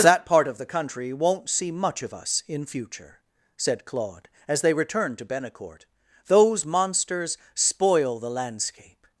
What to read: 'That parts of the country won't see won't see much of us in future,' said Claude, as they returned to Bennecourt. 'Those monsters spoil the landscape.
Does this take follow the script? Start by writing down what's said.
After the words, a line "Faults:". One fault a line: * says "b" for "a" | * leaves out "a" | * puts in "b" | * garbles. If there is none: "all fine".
'That part of the country won't see much of us in future,' said Claude, as they returned to Bennecourt. 'Those monsters spoil the landscape.
Faults:
* says "part" for "parts"
* leaves out "won't see"